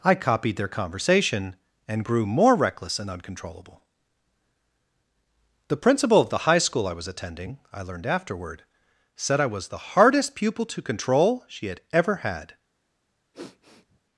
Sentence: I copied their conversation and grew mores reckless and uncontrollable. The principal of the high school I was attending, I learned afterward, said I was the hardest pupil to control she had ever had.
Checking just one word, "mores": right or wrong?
wrong